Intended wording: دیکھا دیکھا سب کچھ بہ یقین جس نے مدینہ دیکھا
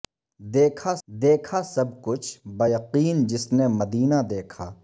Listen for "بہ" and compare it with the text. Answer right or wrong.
right